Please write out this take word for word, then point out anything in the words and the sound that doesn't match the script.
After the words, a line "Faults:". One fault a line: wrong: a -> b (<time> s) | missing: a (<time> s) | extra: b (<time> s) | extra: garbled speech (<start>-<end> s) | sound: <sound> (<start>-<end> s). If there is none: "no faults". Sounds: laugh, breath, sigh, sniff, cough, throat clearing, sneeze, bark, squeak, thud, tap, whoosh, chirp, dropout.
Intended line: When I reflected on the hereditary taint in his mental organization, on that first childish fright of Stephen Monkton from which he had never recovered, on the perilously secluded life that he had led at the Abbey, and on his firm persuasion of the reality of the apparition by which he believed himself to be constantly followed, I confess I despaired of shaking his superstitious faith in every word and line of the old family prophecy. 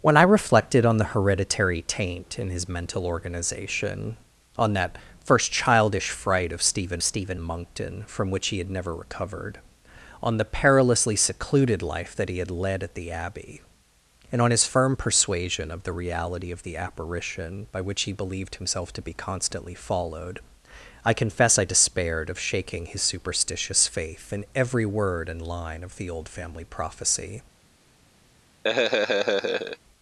When I reflected on the hereditary taint in his mental organization, on that first childish fright of Stephen Stephen Monkton from which he had never recovered, on the perilously secluded life that he had led at the Abbey, and on his firm persuasion of the reality of the apparition by which he believed himself to be constantly followed, I confess I despaired of shaking his superstitious faith in every word and line of the old family prophecy.
Faults:
extra: Stephen (7.0 s)
sound: laugh (28.6-29.8 s)